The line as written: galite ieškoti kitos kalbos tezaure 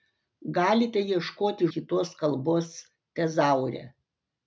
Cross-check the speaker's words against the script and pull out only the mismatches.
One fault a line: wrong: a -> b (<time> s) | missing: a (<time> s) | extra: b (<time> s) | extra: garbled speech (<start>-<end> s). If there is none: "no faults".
no faults